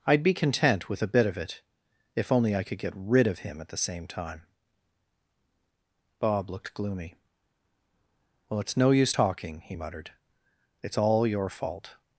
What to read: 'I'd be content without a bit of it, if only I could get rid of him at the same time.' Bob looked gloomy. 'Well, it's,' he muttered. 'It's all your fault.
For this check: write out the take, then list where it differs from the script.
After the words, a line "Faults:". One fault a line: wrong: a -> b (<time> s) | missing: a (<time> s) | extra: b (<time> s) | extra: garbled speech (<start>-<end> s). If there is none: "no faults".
'I'd be content with a bit of it, if only I could get rid of him at the same time.' Bob looked gloomy. 'Well, it's no use talking,' he muttered. 'It's all your fault.
Faults:
wrong: without -> with (0.9 s)
extra: no use talking (8.8 s)